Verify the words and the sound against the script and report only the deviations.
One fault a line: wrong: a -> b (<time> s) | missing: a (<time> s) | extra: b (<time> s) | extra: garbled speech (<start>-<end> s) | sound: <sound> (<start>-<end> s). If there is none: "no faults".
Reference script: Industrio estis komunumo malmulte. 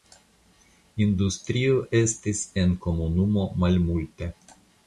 extra: en (2.6 s)